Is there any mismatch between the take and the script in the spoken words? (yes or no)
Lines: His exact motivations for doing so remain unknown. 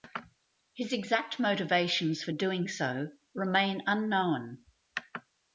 no